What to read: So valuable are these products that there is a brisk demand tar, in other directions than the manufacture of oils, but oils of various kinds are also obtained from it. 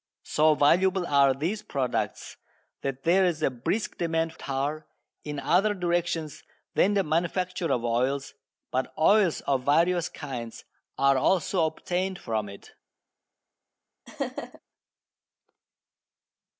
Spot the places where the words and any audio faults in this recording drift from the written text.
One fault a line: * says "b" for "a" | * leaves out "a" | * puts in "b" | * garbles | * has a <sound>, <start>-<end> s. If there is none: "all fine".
* has a laugh, 14.1-14.6 s